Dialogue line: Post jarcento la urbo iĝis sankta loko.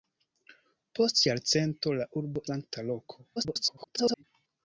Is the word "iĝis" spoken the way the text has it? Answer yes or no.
no